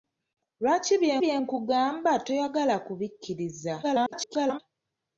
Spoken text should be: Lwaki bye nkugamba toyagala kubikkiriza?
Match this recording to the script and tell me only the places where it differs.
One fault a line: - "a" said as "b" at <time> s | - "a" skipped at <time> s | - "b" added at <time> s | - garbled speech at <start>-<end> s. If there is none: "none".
- "bye" added at 1.2 s
- garbled speech at 3.8-4.6 s